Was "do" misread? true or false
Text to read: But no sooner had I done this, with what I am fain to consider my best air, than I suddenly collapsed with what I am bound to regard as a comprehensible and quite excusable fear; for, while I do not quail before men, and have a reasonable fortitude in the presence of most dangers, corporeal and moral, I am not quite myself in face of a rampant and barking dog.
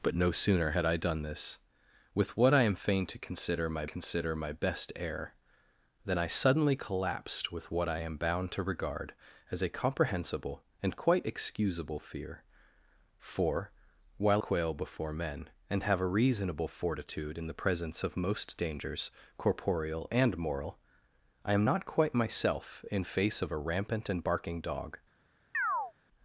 true